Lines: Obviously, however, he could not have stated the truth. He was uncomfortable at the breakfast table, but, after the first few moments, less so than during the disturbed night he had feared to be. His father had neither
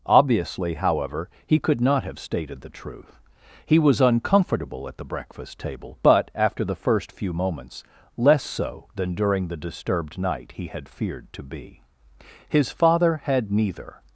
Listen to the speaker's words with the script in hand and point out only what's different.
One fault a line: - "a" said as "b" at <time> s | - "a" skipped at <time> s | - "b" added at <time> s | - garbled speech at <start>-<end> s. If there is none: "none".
none